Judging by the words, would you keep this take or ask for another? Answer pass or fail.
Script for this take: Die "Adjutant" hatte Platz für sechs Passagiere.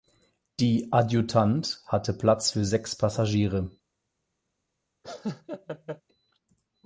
pass